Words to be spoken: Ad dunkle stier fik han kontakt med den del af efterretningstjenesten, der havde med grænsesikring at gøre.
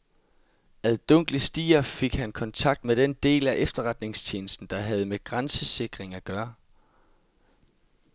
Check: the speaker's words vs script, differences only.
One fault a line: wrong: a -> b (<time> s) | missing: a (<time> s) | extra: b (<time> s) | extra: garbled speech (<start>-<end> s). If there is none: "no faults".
no faults